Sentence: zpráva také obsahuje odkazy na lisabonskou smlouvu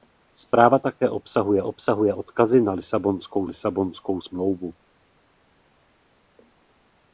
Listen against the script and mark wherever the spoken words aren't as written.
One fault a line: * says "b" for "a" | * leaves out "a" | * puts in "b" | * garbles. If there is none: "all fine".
* puts in "obsahuje"
* puts in "lisabonskou"